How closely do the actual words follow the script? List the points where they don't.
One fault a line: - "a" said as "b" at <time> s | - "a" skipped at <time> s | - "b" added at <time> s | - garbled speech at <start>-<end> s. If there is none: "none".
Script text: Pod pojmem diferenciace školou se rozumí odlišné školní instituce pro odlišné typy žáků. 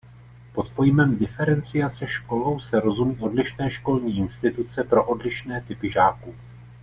none